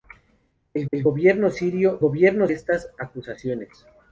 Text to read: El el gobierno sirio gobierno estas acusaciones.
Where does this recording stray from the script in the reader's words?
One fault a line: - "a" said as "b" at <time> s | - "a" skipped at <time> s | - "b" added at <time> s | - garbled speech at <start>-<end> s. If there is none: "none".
none